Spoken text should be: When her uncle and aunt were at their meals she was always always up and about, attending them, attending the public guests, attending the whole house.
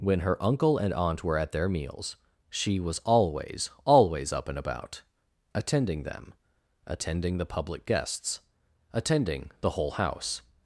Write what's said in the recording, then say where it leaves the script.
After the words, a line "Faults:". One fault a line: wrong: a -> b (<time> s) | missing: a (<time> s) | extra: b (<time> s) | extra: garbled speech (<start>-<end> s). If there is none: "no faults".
When her uncle and aunt were at their meals she was always always up and about, attending them, attending the public guests, attending the whole house.
Faults:
no faults